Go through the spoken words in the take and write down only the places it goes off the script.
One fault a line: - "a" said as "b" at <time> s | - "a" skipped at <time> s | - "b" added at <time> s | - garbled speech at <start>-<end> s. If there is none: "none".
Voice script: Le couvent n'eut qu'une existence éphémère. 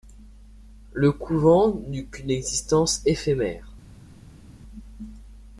none